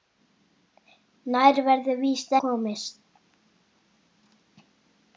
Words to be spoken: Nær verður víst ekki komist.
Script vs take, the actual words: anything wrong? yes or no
yes